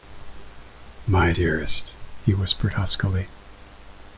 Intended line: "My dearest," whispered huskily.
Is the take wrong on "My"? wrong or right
right